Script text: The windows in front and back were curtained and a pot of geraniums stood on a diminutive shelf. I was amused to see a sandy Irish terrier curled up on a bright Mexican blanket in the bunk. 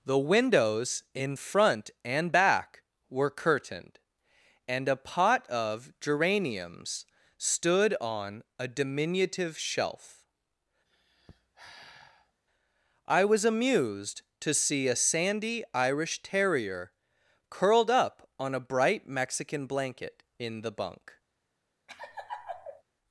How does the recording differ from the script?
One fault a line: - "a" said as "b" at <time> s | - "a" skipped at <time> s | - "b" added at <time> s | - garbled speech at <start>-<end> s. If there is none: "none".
none